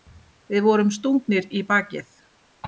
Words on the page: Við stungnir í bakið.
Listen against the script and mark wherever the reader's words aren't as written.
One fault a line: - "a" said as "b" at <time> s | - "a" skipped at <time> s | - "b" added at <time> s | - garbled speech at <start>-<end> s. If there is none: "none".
- "vorum" added at 0.7 s